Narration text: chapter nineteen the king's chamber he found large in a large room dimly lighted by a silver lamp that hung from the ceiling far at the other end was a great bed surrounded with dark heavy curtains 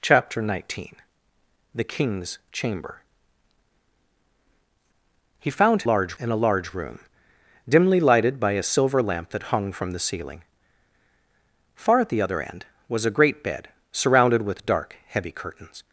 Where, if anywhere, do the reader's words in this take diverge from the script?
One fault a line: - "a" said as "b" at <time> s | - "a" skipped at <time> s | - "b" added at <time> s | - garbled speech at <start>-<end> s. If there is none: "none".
none